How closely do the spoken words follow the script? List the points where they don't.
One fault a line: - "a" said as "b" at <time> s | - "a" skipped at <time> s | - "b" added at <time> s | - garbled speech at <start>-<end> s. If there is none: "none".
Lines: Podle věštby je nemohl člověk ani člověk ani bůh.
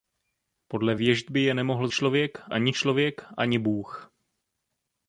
none